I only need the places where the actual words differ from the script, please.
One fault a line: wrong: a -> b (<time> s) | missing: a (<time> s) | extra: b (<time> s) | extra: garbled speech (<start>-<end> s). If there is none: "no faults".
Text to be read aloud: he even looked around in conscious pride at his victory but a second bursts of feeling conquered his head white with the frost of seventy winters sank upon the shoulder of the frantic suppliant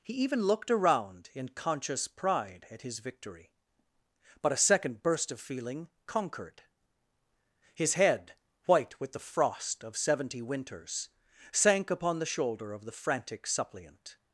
wrong: bursts -> burst (5.0 s)